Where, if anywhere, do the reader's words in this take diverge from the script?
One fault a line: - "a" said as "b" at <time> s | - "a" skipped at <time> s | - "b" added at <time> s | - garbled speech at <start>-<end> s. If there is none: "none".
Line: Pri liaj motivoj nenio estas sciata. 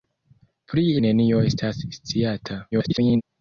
- "liaj motivoj" skipped at 0.8 s
- garbled speech at 2.7-3.2 s